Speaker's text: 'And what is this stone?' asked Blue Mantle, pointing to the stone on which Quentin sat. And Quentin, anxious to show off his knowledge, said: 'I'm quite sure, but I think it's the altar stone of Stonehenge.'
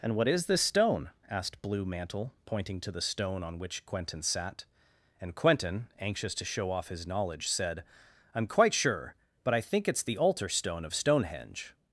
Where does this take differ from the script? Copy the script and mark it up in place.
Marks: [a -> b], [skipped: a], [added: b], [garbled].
'And what is this stone?' asked Blue Mantle, pointing to the stone on which Quentin sat. And Quentin, anxious to show off his knowledge, said: 'I'm quite sure, but I think it's the altar stone of Stonehenge.'